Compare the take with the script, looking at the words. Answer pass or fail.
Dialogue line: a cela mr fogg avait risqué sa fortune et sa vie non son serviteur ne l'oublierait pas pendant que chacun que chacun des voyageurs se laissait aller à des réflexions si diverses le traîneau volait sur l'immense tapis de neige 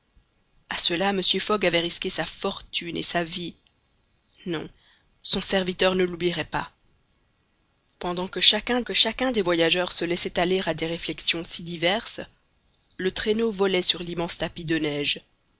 pass